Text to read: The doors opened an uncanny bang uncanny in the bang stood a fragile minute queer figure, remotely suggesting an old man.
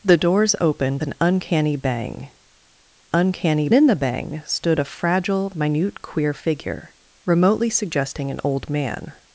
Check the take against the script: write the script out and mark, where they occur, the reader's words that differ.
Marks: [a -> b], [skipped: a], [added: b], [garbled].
The doors opened an uncanny bang uncanny in the bang stood a fragile minute queer figure, remotely suggesting an old man.